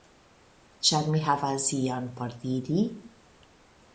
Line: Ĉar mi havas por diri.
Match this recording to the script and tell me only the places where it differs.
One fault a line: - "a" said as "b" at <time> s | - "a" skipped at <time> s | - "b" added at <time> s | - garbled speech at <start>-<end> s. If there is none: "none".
- "ion" added at 1.8 s